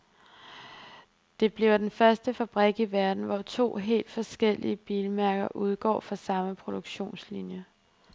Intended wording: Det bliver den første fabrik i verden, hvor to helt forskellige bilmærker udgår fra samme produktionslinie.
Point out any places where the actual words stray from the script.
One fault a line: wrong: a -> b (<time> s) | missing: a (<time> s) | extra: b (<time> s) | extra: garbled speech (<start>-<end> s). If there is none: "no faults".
no faults